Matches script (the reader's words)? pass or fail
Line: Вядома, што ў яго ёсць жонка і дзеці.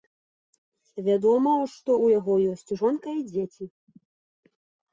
pass